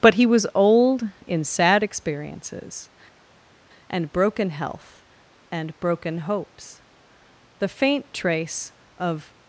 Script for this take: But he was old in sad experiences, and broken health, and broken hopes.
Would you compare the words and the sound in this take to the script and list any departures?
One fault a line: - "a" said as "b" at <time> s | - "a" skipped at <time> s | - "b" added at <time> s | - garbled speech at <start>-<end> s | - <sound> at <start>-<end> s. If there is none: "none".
- "The faint trace of" added at 7.6 s